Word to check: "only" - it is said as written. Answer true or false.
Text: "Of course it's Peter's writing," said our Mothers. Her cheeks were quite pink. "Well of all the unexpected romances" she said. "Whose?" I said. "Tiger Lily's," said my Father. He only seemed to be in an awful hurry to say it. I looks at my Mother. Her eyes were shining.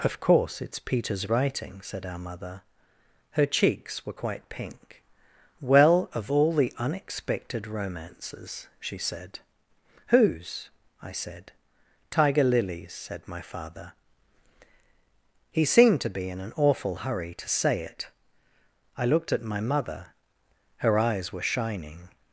false